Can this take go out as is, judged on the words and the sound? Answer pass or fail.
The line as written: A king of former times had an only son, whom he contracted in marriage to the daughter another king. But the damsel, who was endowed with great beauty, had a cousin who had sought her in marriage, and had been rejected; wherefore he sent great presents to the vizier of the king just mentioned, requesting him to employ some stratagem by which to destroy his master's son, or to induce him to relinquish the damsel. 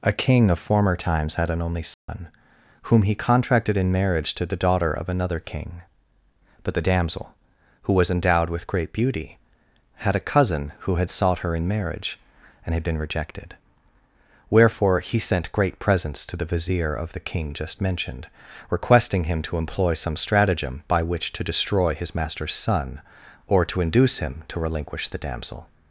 fail